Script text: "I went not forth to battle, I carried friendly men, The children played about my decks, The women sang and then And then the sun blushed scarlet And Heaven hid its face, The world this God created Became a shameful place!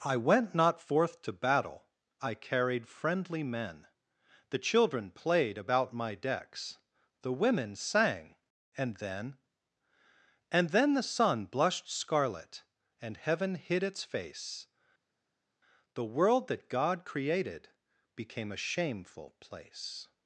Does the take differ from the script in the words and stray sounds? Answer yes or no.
yes